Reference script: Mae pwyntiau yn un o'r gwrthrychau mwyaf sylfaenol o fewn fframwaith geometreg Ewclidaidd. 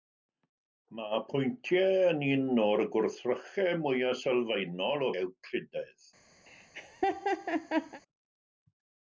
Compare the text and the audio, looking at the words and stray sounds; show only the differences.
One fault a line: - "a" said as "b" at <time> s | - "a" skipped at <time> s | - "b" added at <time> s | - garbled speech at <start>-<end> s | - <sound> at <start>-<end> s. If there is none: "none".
- "fewn fframwaith geometreg" skipped at 5.1 s
- laugh at 6.5-8.0 s